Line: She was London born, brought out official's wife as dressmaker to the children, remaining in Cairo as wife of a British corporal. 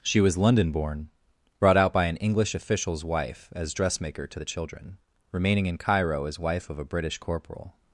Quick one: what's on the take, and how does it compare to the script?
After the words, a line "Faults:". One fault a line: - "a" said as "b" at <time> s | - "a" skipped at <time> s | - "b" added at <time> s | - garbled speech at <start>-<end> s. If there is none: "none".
She was London born, brought out by an English official's wife as dressmaker to the children, remaining in Cairo as wife of a British corporal.
Faults:
- "by an English" added at 1.9 s